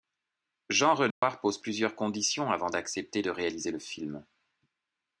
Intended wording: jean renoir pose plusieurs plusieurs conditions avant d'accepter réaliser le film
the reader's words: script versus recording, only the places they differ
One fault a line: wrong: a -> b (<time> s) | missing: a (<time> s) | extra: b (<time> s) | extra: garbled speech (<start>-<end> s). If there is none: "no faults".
missing: plusieurs (1.9 s)
extra: de (3.2 s)